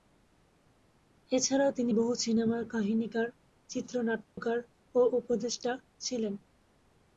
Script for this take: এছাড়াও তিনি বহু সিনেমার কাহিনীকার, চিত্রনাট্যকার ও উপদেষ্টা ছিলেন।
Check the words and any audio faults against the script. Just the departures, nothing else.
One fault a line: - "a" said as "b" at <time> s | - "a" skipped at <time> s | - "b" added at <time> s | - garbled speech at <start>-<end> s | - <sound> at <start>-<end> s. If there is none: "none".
- dropout at 4.3-4.4 s